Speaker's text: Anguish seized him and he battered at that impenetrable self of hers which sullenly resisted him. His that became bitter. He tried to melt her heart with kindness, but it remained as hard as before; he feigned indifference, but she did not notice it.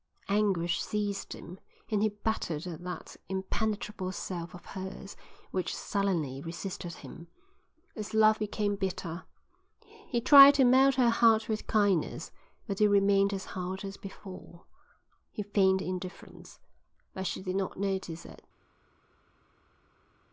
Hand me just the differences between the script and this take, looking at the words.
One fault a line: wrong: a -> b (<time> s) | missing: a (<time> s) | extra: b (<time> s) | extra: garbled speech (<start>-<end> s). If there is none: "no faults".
wrong: that -> love (8.2 s)